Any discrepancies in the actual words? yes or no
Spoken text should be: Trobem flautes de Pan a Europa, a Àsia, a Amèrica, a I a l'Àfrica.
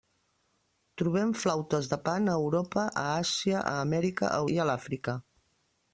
no